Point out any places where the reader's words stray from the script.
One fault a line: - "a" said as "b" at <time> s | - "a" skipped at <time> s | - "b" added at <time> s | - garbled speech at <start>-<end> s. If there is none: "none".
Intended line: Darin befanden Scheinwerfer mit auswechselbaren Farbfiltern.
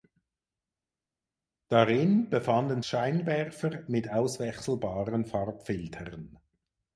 none